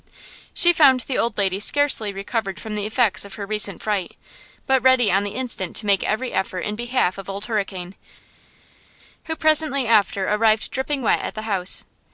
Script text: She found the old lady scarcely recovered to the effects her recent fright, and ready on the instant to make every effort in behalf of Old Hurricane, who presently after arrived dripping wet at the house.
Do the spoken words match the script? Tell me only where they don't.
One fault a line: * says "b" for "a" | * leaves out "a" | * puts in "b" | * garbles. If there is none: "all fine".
* says "from" for "to"
* puts in "of"
* says "but" for "and"